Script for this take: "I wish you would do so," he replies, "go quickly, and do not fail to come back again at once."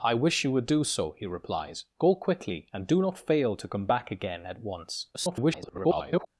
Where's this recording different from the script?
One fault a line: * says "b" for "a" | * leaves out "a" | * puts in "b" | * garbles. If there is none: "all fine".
* garbles